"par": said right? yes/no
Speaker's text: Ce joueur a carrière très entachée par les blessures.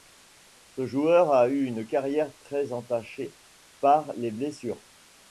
yes